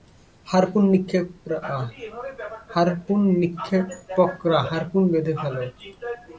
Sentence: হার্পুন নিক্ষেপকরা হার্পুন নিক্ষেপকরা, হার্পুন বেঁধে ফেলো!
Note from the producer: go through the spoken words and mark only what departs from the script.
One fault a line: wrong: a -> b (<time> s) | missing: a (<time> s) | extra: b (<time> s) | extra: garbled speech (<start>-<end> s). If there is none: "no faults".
missing: নিক্ষেপকরা হার্পুন (5.0 s)